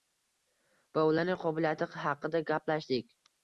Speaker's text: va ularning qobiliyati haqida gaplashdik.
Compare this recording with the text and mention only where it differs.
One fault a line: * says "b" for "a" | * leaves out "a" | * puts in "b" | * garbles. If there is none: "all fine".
all fine